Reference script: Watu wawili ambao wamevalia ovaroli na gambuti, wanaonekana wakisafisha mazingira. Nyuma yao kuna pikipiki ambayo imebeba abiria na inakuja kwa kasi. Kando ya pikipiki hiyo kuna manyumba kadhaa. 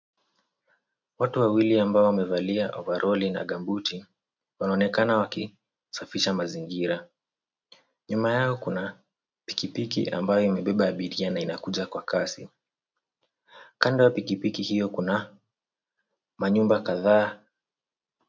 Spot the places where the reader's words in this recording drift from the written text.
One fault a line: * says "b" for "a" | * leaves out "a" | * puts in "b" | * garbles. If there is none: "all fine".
all fine